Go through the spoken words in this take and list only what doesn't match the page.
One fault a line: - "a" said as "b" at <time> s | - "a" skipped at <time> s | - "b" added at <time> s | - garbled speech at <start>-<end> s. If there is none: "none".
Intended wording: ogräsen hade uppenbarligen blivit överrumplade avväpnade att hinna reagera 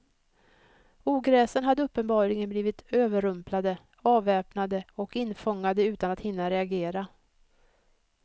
- "och infångade utan" added at 4.9 s